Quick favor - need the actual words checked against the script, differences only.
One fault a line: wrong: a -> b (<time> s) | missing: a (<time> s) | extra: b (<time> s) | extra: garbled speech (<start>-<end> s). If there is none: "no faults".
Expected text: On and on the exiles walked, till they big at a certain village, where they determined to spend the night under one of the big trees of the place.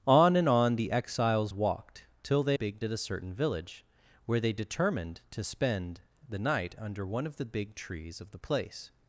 no faults